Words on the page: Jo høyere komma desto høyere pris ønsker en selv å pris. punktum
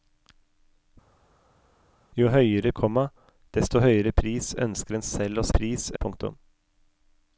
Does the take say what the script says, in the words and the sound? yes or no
yes